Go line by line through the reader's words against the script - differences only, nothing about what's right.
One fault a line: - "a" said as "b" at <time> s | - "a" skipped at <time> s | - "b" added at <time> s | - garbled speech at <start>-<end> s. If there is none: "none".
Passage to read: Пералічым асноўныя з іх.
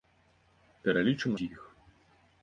- "асноўныя" skipped at 1.3 s